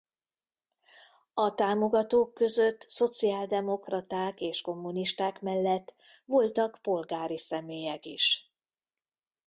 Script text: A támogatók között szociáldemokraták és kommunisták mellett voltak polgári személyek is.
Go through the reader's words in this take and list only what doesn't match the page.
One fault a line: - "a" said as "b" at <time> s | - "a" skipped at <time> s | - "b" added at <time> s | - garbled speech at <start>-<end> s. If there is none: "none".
none